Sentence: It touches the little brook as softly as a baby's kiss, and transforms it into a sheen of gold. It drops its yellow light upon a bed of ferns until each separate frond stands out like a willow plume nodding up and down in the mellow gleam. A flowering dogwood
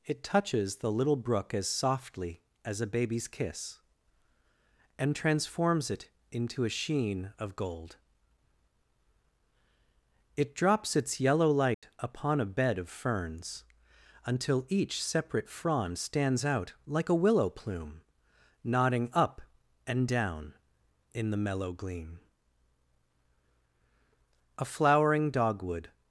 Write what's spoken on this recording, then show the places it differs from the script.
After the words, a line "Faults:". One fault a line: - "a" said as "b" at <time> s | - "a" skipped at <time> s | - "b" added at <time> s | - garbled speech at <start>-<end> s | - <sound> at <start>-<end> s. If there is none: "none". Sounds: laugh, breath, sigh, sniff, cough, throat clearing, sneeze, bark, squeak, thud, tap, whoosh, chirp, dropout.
It touches the little brook as softly as a baby's kiss, and transforms it into a sheen of gold. It drops its yellow light upon a bed of ferns until each separate frond stands out like a willow plume nodding up and down in the mellow gleam. A flowering dogwood
Faults:
- dropout at 11.7-11.8 s